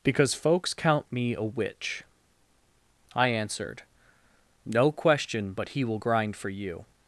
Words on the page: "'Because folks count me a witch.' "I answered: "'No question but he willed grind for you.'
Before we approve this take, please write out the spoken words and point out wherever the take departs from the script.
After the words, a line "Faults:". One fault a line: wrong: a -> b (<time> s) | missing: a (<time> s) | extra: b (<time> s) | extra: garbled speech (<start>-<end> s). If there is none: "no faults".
"'Because folks count me a witch.' "I answered: "'No question but he will grind for you.'
Faults:
wrong: willed -> will (5.8 s)